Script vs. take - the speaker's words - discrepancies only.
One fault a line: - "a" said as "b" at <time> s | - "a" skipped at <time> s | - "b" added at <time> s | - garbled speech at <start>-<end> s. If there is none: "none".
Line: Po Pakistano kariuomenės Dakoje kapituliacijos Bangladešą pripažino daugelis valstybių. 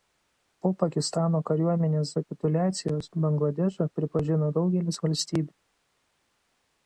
- "Dakoje" skipped at 2.1 s